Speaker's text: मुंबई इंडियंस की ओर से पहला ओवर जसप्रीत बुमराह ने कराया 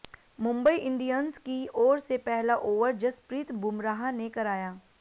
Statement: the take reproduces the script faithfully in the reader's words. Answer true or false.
true